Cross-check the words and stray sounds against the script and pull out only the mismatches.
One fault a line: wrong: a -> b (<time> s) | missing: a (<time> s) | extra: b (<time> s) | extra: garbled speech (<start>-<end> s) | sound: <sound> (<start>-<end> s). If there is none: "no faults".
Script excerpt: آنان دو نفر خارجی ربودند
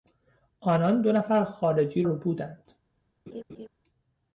sound: laugh (3.3-3.7 s)